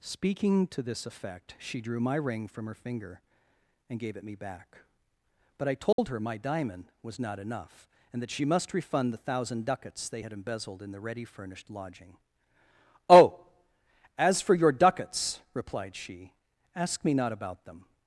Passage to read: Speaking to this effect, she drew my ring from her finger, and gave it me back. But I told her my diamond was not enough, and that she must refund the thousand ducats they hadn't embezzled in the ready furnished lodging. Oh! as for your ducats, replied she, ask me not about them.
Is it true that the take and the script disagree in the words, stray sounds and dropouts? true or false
true